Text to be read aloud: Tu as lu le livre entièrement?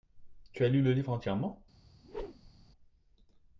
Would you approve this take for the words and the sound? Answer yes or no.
no